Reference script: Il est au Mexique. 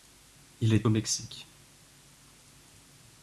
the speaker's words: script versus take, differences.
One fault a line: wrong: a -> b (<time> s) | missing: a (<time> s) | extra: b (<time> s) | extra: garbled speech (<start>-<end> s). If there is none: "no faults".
no faults